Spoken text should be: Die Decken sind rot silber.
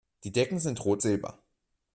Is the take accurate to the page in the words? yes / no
yes